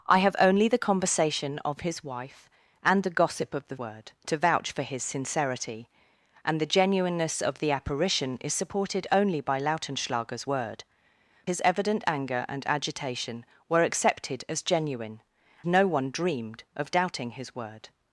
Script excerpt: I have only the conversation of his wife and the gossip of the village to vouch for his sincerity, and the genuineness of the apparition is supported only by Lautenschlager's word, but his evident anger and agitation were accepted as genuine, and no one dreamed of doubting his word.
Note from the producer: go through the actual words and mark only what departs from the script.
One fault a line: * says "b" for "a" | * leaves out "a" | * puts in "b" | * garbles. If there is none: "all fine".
* says "word" for "village"
* leaves out "but"
* leaves out "and"